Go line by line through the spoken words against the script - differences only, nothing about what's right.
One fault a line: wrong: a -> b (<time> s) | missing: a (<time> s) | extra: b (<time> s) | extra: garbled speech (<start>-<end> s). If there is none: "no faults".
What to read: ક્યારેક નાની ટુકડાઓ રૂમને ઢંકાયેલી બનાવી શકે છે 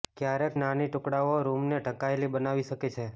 no faults